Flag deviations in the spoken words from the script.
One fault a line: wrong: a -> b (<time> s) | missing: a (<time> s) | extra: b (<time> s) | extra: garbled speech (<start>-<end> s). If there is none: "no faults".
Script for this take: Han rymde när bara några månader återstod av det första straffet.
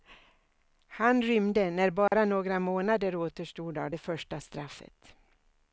no faults